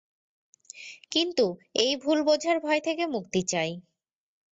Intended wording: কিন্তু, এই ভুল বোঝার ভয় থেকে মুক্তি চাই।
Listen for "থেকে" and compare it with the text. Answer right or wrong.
right